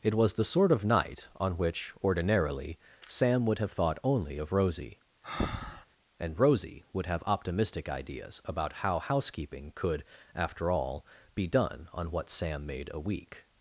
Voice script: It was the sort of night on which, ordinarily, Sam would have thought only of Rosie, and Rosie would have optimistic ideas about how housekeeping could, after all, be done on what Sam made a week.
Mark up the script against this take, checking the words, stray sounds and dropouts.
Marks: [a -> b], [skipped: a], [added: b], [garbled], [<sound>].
It was the sort of night on which, ordinarily, Sam would have thought only of Rosie, [breath] and Rosie would have optimistic ideas about how housekeeping could, after all, be done on what Sam made a week.